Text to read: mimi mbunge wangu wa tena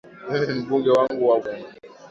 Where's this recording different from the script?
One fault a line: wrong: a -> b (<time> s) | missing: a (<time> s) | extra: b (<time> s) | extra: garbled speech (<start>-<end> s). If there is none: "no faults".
no faults